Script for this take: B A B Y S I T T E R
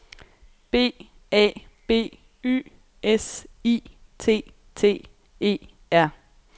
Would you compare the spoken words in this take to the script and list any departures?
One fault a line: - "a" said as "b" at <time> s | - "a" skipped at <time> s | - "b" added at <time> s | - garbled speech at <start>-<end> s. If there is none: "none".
none